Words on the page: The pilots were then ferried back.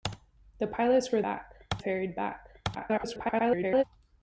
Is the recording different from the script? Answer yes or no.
yes